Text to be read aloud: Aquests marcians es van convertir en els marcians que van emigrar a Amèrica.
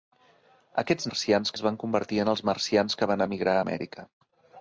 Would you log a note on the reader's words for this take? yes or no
no